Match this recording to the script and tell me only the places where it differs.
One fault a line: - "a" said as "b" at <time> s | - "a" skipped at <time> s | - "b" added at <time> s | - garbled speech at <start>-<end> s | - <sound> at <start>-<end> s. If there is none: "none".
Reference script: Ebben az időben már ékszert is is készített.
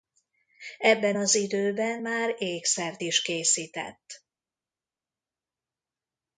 - "is" skipped at 3.2 s